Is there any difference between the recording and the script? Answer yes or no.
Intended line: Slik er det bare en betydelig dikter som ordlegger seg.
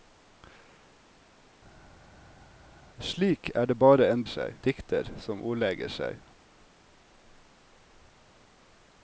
yes